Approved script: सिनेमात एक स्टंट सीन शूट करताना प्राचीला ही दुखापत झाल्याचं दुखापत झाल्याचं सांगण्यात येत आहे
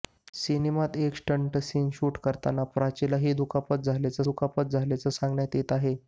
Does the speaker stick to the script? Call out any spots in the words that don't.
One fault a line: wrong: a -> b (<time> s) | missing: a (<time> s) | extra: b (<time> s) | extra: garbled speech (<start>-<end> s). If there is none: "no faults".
no faults